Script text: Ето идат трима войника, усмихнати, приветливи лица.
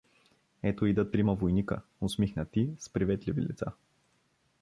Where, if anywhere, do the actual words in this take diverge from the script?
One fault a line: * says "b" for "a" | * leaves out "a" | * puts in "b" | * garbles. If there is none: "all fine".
* puts in "с"